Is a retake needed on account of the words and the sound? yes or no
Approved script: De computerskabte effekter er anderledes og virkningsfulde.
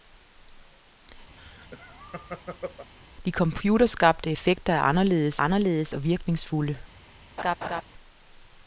yes